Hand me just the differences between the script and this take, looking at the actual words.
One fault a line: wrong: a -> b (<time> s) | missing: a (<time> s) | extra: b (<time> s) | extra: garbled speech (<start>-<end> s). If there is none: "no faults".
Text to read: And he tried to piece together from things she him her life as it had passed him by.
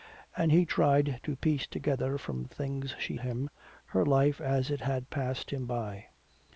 no faults